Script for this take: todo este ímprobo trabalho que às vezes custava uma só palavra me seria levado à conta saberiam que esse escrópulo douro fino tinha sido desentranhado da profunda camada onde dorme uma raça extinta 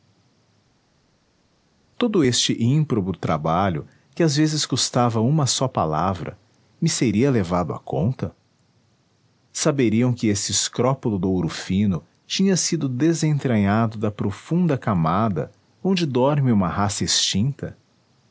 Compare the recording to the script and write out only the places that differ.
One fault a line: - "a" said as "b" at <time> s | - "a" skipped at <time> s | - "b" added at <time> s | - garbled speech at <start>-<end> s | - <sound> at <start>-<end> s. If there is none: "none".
none